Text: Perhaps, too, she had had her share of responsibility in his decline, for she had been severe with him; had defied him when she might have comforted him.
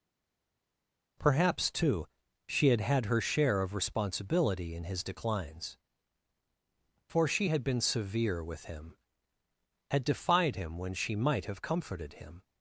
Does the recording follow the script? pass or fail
fail